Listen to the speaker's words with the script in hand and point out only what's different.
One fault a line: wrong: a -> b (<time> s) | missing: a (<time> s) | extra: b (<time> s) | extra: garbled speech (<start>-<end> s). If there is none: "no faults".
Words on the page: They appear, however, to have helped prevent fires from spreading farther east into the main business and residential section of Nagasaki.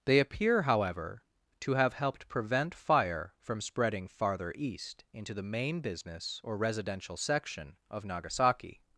wrong: fires -> fire (2.7 s)
wrong: and -> or (6.4 s)